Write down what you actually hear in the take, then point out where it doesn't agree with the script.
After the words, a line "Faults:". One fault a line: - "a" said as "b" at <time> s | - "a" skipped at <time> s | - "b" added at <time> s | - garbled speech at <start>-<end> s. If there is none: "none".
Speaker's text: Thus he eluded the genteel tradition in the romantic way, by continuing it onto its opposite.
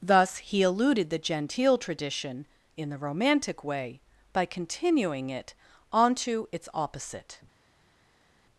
Thus he eluded the genteel tradition in the romantic way, by continuing it onto its opposite.
Faults:
none